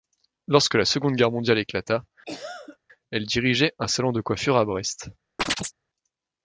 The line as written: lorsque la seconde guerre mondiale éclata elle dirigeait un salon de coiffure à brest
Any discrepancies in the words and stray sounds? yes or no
yes